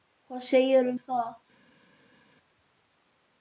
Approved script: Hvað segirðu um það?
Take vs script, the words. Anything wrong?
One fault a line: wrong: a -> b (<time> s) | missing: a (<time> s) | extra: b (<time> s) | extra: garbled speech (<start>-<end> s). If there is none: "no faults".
no faults